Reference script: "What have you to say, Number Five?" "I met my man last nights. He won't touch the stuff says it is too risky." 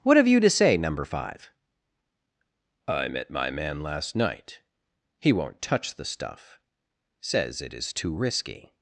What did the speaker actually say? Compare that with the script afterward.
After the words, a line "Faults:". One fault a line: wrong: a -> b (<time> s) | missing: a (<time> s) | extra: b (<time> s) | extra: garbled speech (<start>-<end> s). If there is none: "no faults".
"What have you to say, Number Five?" "I met my man last night. He won't touch the stuff says it is too risky."
Faults:
wrong: nights -> night (4.1 s)